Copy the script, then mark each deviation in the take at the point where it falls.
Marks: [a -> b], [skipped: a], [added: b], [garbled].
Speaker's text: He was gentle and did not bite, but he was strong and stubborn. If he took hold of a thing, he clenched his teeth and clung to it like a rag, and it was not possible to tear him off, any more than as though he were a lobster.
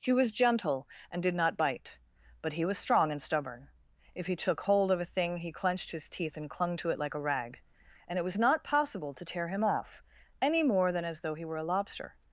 He was gentle and did not bite, but he was strong and stubborn. If he took hold of a thing, he clenched his teeth and clung to it like a rag, and it was not possible to tear him off, any more than as though he were a lobster.